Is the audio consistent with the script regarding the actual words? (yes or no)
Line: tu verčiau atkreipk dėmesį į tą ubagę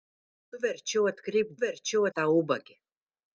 no